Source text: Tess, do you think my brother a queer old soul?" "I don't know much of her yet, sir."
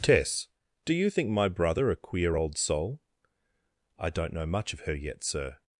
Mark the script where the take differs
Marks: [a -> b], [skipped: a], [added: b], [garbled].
Tess, do you think my brother a queer old soul?" "I don't know much of her yet, sir."